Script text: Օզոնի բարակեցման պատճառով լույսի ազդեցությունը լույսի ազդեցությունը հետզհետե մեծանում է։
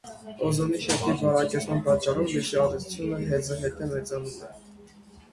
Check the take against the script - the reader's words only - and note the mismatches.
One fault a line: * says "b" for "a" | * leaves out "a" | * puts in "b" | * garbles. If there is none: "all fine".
* puts in "շերտի"
* leaves out "լույսի ազդեցությունը"